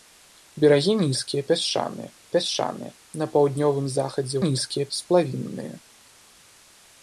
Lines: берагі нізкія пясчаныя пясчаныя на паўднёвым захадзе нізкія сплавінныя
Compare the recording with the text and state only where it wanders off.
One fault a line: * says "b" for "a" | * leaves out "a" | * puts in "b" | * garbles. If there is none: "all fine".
all fine